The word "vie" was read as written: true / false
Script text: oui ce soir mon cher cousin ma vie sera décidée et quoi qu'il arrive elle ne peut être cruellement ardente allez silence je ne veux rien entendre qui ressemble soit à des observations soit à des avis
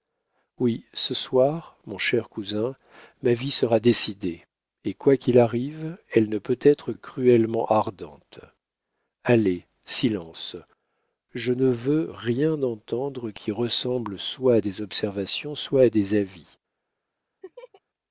true